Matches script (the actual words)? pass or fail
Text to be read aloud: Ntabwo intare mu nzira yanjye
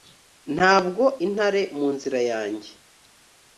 pass